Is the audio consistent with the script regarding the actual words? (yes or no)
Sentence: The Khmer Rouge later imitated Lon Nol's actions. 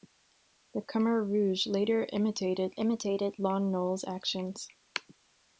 no